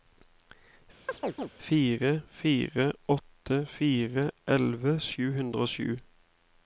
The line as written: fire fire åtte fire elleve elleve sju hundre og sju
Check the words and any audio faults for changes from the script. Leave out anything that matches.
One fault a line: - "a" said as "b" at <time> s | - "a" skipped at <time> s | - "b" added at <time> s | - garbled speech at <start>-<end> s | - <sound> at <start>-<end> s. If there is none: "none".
- chirp at 1.1-1.5 s
- "elleve" skipped at 5.0 s